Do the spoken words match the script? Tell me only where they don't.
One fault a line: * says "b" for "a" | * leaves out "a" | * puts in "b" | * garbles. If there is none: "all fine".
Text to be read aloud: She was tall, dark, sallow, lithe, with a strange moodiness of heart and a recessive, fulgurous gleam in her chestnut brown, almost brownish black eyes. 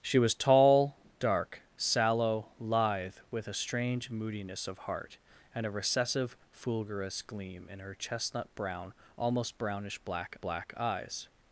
* puts in "black"